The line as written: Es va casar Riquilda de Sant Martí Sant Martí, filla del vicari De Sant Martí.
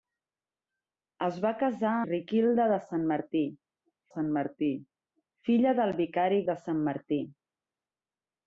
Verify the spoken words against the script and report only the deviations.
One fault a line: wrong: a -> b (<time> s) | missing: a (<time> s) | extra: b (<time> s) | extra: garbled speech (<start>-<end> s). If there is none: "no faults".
no faults